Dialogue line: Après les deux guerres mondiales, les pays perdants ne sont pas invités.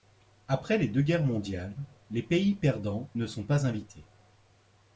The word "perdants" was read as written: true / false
true